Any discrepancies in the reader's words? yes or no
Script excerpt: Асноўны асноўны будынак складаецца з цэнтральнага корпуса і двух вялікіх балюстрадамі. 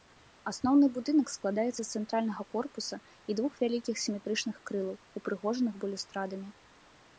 yes